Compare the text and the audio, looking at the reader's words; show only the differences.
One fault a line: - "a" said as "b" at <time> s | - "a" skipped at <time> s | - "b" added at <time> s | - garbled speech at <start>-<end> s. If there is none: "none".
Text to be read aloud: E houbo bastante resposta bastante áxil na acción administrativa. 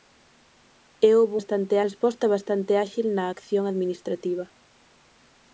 none